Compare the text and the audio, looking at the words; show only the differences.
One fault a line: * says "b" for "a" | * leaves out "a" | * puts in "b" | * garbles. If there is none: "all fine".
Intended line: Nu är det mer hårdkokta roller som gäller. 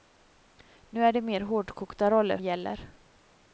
* leaves out "som"